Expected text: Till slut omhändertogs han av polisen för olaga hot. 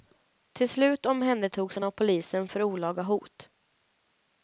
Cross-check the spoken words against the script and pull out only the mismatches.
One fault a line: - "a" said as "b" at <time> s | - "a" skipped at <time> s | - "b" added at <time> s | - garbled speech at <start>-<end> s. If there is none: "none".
none